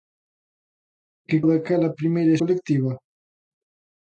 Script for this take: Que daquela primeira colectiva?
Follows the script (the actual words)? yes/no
yes